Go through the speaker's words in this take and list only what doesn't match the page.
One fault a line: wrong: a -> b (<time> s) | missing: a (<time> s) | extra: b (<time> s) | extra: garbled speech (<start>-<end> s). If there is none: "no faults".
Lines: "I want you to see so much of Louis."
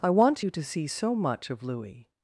no faults